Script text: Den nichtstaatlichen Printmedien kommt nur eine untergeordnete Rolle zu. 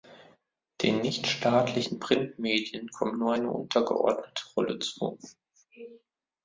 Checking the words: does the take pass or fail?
pass